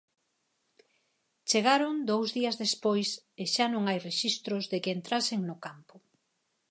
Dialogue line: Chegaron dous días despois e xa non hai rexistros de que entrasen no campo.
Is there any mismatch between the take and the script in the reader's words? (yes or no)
no